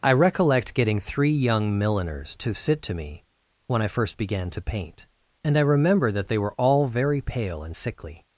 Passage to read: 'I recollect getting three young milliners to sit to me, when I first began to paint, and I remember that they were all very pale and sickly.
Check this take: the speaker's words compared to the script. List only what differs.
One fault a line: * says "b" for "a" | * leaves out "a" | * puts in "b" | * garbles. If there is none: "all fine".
all fine